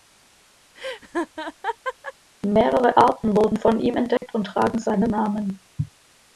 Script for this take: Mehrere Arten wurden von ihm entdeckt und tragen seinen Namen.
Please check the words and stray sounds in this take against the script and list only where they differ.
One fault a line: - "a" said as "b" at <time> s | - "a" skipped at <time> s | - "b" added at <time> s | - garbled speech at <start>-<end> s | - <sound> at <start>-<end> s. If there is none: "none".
- laugh at 0.7-2.1 s
- dropout at 4.2-4.2 s